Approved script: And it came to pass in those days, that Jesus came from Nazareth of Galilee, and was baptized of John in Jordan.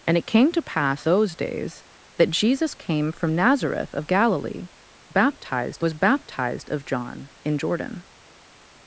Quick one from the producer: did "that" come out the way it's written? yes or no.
yes